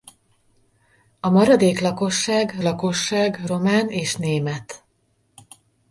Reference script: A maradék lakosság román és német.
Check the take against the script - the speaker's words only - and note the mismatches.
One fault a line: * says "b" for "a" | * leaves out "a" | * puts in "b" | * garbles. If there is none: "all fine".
* puts in "lakosság"